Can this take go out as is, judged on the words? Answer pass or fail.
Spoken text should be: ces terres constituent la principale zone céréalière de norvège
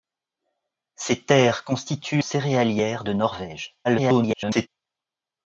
fail